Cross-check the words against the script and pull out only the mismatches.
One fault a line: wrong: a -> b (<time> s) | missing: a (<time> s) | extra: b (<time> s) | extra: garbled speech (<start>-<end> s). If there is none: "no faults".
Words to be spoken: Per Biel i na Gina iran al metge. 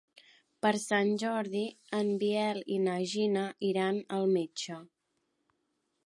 extra: Sant Jordi en (0.8 s)